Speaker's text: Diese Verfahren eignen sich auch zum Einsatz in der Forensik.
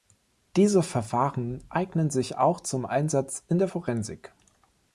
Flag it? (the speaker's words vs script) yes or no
no